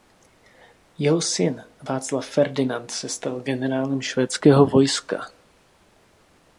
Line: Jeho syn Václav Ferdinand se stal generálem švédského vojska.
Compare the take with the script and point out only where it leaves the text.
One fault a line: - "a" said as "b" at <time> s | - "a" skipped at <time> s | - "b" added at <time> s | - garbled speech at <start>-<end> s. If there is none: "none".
none